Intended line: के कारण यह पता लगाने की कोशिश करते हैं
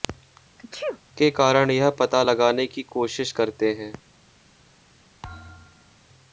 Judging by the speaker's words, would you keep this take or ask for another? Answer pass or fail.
pass